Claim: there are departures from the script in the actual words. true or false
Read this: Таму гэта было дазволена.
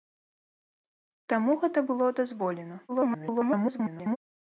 true